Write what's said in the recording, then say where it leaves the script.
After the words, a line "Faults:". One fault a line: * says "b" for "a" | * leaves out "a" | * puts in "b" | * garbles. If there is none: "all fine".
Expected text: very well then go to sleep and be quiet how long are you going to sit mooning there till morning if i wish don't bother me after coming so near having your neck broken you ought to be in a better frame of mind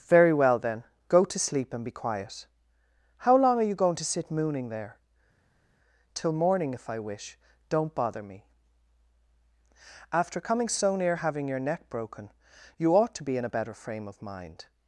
very well then go to sleep and be quiet how long are you going to sit mooning there till morning if i wish don't bother me after coming so near having your neck broken you ought to be in a better frame of mind
Faults:
all fine